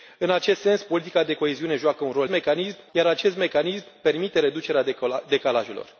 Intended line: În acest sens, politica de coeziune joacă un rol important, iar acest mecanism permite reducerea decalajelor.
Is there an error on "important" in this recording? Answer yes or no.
yes